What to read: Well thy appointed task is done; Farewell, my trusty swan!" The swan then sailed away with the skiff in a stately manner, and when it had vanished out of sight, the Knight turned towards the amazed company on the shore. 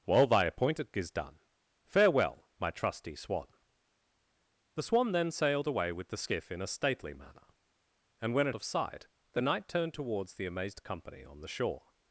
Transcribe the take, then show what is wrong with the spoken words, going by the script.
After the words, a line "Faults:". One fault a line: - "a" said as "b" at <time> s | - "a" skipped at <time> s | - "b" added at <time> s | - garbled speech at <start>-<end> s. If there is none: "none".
Well thy appointed is done; Farewell, my trusty swan!" The swan then sailed away with the skiff in a stately manner, and when it of sight, the Knight turned towards the amazed company on the shore.
Faults:
- "task" skipped at 0.9 s
- "had vanished out" skipped at 8.5 s